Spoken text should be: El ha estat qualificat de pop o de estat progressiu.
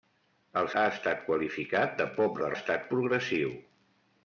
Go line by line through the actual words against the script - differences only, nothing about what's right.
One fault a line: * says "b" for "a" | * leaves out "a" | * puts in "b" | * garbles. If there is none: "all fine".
all fine